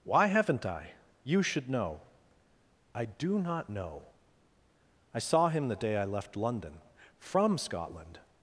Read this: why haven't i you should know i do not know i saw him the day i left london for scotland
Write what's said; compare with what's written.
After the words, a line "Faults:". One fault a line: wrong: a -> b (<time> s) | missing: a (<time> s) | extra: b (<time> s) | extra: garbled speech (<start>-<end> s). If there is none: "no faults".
why haven't i you should know i do not know i saw him the day i left london from scotland
Faults:
wrong: for -> from (7.2 s)